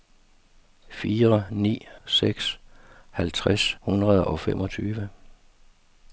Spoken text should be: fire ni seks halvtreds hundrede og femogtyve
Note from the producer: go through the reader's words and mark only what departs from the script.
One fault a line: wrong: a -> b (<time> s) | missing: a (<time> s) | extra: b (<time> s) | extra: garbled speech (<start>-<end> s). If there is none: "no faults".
no faults